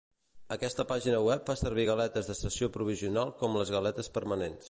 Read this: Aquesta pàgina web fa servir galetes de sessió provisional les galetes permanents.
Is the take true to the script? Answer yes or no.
no